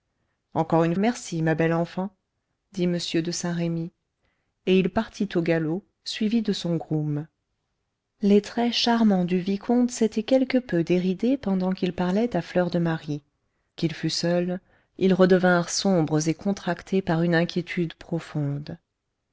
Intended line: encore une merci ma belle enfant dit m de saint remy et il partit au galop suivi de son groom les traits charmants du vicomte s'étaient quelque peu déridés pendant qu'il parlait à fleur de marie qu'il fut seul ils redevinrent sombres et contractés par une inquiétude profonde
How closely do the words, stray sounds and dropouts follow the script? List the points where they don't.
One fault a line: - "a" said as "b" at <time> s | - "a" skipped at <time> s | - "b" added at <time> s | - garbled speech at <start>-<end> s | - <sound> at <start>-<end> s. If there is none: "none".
none